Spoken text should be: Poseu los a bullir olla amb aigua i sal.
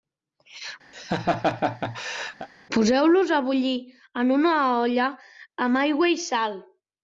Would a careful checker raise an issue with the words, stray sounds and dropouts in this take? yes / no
yes